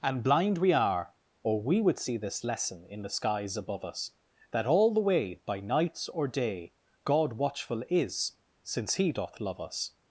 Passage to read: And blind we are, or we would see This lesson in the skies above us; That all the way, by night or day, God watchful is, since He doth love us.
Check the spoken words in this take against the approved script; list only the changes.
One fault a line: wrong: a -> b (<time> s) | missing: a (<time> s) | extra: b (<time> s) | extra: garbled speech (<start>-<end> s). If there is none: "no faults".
wrong: night -> nights (5.6 s)